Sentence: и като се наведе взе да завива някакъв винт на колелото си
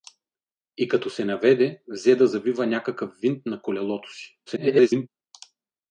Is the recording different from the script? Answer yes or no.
yes